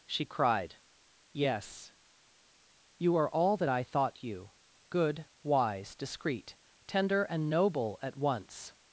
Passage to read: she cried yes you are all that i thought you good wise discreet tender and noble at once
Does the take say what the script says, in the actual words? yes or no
yes